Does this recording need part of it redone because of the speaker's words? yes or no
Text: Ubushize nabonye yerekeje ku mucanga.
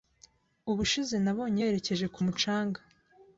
no